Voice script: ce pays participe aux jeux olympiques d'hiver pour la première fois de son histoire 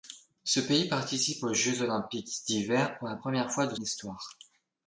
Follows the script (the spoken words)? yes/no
no